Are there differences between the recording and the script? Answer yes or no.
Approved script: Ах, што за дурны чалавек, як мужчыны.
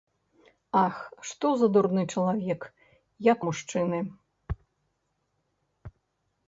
no